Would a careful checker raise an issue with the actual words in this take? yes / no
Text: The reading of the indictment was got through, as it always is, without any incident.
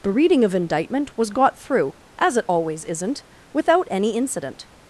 yes